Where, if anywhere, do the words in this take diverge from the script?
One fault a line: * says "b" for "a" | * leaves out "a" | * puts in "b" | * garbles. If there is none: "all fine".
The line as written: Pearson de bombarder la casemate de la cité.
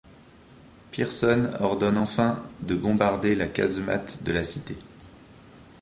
* puts in "ordonne enfin"